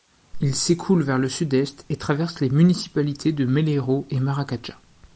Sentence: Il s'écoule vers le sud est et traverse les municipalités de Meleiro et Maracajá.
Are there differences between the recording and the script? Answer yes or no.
no